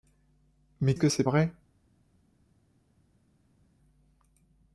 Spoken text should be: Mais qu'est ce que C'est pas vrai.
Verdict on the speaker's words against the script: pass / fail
fail